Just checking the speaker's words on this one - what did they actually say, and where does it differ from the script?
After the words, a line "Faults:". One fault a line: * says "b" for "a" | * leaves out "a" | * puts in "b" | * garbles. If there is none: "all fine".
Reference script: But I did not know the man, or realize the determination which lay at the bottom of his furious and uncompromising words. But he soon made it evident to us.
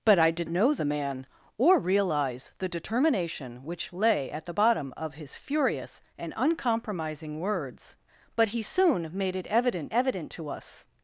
But I did know the man, or realize the determination which lay at the bottom of his furious and uncompromising words. But he soon made it evident evident to us.
Faults:
* leaves out "not"
* puts in "evident"